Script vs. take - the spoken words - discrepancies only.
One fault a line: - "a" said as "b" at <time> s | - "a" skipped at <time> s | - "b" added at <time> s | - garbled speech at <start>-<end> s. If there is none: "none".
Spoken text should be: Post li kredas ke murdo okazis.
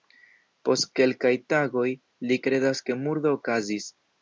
- "kelkaj tagoj" added at 1.0 s